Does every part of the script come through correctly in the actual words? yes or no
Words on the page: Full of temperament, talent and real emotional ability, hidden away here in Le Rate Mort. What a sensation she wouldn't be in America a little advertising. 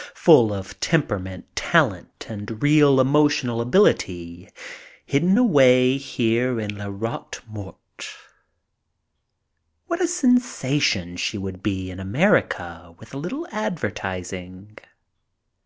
no